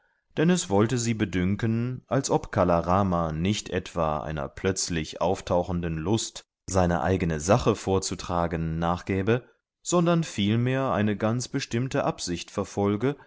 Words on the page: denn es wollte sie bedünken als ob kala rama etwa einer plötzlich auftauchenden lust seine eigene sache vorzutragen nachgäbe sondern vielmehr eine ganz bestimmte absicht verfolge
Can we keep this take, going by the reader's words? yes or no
no